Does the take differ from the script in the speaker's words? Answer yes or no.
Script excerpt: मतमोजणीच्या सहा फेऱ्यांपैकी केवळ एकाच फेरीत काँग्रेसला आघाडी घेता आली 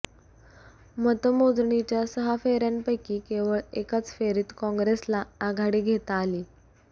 no